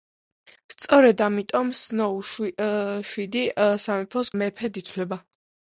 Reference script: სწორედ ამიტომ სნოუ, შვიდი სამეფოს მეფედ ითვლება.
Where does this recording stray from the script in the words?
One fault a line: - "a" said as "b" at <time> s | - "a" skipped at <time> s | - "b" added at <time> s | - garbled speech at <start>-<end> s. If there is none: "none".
none